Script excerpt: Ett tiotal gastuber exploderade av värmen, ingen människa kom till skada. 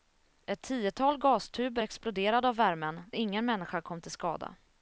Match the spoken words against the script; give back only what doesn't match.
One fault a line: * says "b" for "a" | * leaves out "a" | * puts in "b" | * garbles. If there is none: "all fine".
all fine